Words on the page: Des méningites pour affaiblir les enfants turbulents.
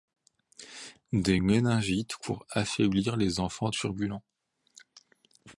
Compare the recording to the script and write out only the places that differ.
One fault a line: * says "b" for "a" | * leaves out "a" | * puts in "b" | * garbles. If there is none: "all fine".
all fine